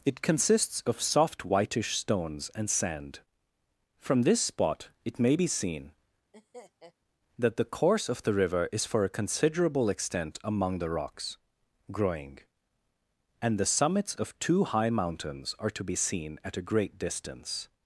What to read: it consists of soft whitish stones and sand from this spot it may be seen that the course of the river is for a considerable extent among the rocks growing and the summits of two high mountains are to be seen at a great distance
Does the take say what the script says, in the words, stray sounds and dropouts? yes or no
no